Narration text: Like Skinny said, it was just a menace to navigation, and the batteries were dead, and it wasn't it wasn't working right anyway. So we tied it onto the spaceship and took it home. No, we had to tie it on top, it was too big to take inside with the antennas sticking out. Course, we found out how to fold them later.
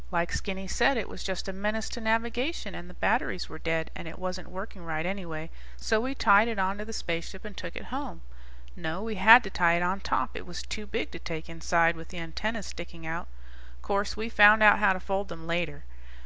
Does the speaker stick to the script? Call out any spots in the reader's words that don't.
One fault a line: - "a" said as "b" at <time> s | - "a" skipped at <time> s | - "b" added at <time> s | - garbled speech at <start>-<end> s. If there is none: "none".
- "it wasn't" skipped at 4.5 s